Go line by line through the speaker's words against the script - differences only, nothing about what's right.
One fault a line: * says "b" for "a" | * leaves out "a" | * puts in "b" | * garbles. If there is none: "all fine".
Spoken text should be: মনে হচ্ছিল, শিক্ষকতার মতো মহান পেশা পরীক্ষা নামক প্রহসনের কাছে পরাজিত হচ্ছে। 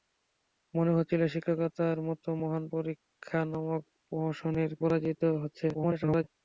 * leaves out "পেশা"
* leaves out "কাছে"
* garbles